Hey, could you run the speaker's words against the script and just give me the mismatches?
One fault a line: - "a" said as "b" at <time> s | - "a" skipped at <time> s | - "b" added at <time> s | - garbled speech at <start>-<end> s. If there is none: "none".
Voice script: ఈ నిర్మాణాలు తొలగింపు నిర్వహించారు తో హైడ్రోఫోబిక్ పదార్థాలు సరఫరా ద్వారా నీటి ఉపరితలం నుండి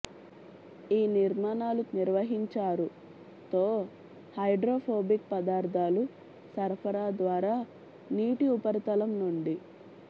- "తొలగింపు" skipped at 1.8 s